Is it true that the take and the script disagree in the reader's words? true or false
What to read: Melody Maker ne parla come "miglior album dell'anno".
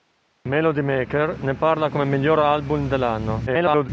true